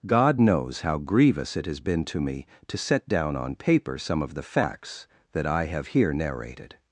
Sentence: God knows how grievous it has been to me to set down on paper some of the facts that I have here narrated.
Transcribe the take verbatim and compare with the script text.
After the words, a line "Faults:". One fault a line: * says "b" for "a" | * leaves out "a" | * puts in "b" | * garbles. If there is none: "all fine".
God knows how grievous it has been to me to set down on paper some of the facts that I have here narrated.
Faults:
all fine